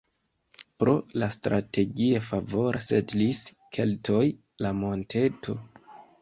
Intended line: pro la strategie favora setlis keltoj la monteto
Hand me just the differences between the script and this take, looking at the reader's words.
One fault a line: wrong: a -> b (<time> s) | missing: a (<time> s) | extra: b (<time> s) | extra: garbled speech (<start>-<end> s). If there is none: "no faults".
no faults